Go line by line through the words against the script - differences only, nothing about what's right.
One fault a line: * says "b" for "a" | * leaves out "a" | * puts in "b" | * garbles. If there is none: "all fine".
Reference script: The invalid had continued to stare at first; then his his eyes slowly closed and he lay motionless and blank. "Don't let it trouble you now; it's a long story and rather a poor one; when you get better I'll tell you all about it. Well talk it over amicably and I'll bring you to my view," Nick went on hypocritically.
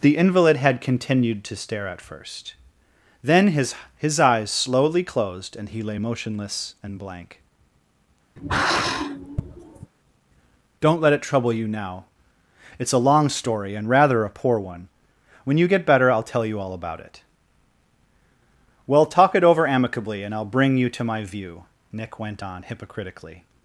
all fine